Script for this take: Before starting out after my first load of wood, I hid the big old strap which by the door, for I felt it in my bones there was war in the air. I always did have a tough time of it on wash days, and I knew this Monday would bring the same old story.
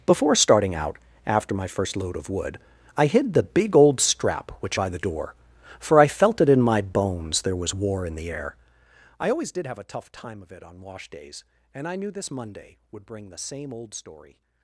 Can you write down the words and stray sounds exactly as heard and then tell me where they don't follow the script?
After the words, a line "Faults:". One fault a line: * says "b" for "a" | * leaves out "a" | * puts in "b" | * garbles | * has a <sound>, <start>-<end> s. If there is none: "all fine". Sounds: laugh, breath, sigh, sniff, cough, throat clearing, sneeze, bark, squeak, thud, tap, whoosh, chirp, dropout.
Before starting out after my first load of wood, I hid the big old strap which by the door, for I felt it in my bones there was war in the air. I always did have a tough time of it on wash days, and I knew this Monday would bring the same old story.
Faults:
all fine